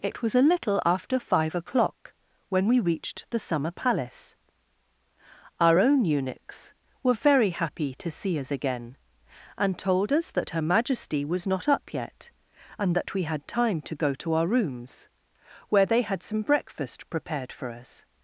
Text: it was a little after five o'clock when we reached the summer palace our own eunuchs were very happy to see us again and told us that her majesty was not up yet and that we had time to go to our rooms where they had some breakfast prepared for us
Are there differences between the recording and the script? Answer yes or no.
no